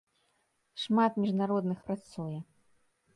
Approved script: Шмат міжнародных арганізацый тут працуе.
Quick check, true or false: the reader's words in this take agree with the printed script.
false